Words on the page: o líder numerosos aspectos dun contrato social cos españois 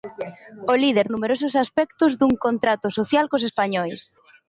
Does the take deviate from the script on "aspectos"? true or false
false